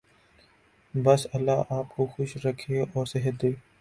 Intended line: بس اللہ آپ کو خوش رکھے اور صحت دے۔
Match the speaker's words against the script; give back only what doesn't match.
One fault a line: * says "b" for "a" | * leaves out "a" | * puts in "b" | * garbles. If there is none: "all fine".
all fine